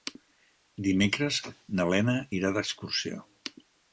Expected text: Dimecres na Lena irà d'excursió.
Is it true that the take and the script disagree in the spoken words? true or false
false